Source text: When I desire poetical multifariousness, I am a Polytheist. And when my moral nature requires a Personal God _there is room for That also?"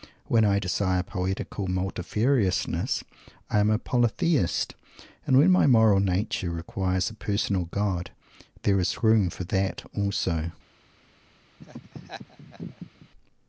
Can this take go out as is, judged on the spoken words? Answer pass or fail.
pass